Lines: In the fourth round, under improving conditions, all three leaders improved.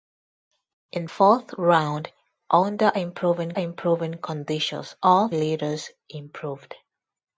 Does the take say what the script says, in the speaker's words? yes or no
no